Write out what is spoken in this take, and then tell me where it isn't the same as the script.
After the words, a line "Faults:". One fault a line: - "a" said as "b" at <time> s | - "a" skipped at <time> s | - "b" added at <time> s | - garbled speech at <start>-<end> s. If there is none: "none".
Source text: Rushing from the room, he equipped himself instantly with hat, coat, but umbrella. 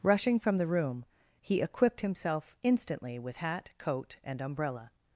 Rushing from the room, he equipped himself instantly with hat, coat, and umbrella.
Faults:
- "but" said as "and" at 4.2 s